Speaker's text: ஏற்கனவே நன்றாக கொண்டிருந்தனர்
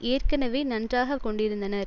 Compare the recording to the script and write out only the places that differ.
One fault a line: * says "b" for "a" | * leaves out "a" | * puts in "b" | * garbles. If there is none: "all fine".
all fine